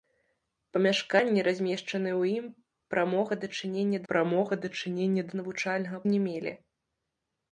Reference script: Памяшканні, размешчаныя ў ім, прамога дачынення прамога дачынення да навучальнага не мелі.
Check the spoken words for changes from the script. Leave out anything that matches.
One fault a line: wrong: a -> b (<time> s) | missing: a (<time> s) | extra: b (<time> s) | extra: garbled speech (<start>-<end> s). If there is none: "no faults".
no faults